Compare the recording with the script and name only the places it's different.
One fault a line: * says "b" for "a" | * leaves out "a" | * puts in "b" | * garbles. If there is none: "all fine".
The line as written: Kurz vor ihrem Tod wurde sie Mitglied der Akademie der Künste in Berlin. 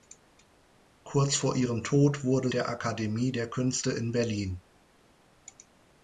* leaves out "sie Mitglied"